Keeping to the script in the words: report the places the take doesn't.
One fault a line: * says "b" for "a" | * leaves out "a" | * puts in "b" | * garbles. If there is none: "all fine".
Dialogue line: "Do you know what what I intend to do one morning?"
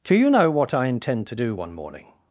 * leaves out "what"